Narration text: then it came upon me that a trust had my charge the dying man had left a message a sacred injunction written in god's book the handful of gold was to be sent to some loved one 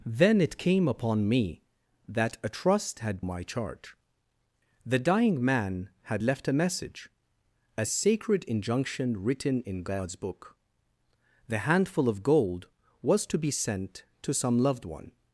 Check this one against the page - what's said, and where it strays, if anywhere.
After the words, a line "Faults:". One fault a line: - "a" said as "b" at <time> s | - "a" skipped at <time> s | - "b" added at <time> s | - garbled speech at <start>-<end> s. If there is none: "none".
then it came upon me that a trust had my charge the dying man had left a message a sacred injunction written in god's book the handful of gold was to be sent to some loved one
Faults:
none